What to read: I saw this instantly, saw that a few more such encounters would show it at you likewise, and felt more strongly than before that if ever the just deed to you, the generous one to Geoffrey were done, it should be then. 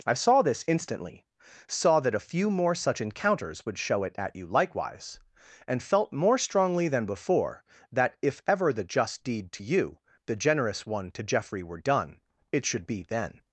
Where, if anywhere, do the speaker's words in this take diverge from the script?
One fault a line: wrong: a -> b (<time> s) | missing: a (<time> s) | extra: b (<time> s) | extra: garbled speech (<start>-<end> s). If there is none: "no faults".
no faults